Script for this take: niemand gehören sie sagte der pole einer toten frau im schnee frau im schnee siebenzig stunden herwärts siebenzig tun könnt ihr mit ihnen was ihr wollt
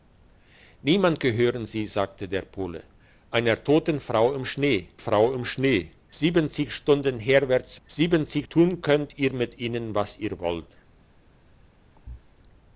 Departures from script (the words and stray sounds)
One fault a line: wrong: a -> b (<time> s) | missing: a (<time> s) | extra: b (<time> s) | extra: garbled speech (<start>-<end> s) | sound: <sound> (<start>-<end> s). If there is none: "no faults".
sound: thud (12.0-12.3 s)